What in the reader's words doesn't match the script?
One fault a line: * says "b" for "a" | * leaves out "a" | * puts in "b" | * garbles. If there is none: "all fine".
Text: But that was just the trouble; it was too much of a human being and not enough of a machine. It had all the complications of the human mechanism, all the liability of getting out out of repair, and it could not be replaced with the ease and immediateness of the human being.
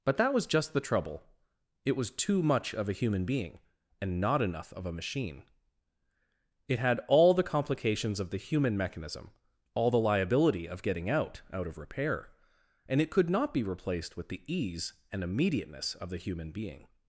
all fine